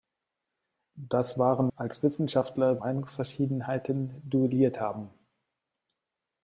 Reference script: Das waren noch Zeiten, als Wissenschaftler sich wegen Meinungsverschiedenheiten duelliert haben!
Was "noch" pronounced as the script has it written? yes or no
no